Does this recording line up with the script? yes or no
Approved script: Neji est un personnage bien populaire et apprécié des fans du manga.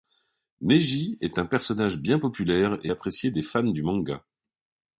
yes